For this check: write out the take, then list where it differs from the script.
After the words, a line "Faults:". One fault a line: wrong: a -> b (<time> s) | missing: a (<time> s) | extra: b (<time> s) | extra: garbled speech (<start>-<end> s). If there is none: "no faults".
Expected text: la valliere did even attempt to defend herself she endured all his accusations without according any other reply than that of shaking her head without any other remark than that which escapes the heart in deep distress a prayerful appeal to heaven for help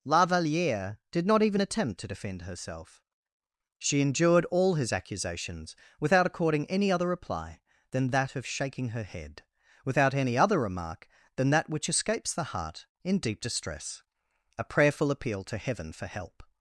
la valliere did not even attempt to defend herself she endured all his accusations without according any other reply than that of shaking her head without any other remark than that which escapes the heart in deep distress a prayerful appeal to heaven for help
Faults:
extra: not (1.3 s)